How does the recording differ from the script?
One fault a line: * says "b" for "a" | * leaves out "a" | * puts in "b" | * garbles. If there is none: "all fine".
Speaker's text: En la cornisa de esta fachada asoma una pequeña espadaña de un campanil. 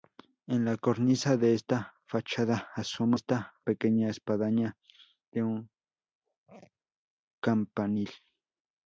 * says "esta" for "una"